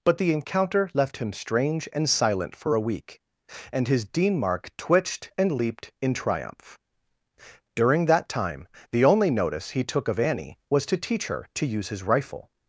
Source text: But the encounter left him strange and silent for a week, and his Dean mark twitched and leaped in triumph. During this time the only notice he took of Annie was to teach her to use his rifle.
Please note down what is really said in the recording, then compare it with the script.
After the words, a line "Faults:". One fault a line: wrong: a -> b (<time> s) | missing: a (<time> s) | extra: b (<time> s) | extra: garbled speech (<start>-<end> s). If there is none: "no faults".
But the encounter left him strange and silent for a week, and his Dean mark twitched and leaped in triumph. During that time the only notice he took of Annie was to teach her to use his rifle.
Faults:
wrong: this -> that (8.1 s)